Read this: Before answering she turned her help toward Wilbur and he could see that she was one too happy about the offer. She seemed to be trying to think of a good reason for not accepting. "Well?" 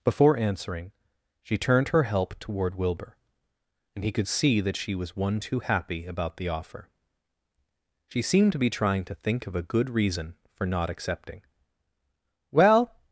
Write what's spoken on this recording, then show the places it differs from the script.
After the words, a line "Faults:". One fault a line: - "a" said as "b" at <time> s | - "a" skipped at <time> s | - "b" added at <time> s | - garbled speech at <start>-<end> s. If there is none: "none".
Before answering she turned her help toward Wilbur and he could see that she was one too happy about the offer. She seemed to be trying to think of a good reason for not accepting. "Well?"
Faults:
none